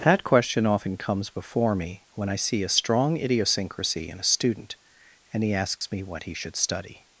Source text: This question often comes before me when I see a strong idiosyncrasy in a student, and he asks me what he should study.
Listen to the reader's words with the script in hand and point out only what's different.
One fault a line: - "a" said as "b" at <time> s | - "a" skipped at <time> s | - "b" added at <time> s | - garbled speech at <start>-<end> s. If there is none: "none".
- "This" said as "That" at 0.0 s